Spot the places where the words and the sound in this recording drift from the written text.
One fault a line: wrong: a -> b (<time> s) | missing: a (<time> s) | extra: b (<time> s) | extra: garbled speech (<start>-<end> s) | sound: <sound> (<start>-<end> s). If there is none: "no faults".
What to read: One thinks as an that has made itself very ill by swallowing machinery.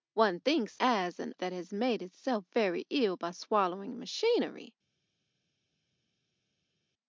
no faults